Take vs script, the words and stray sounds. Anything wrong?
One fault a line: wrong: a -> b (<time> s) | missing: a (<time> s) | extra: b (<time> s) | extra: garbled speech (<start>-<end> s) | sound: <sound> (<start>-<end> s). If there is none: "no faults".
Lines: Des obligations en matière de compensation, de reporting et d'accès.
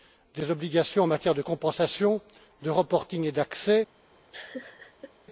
sound: laugh (4.3-5.1 s)